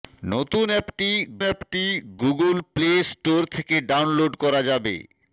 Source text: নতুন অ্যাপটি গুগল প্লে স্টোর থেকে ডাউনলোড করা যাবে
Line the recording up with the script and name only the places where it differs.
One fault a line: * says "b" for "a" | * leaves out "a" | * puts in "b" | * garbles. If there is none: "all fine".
* puts in "অ্যাপটি"